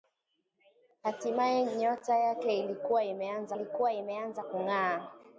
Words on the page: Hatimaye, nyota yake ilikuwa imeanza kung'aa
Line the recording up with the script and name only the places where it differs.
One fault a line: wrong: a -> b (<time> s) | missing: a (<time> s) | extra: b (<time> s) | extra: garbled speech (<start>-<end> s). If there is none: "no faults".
extra: ilikuwa imeanza (3.5 s)